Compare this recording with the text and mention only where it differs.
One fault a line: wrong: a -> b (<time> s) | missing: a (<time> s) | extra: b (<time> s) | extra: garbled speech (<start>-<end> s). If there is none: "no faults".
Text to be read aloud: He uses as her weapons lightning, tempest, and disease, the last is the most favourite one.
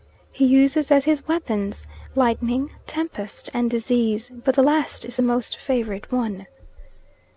wrong: her -> his (1.1 s)
extra: but (4.4 s)